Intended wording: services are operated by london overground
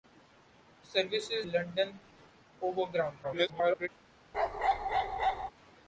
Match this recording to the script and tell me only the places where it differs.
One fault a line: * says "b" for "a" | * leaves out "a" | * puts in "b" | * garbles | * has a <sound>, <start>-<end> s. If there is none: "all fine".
* leaves out "are operated by"
* garbles
* has a bark, 4.3-5.5 s